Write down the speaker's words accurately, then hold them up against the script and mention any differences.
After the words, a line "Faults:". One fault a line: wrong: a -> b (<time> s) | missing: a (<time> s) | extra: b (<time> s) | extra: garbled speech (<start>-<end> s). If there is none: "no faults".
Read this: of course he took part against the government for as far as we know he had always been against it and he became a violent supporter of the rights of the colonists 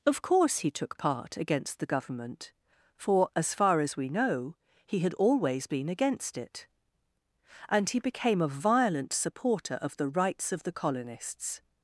of course he took part against the government for as far as we know he had always been against it and he became a violent supporter of the rights of the colonists
Faults:
no faults